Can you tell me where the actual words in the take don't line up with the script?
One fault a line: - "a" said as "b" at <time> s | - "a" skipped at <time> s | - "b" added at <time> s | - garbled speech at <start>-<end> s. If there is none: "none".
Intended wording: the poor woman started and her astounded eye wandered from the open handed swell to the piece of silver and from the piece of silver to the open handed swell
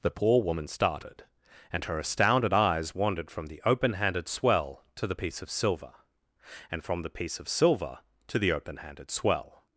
- "eye" said as "eyes" at 2.5 s